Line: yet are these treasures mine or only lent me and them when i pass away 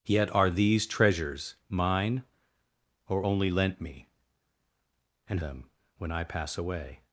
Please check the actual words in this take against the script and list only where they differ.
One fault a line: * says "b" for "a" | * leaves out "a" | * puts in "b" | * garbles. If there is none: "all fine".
all fine